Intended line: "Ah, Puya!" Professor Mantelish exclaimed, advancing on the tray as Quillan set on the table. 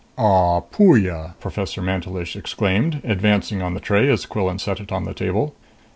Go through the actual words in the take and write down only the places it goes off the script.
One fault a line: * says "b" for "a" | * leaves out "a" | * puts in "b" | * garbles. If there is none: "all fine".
* puts in "it"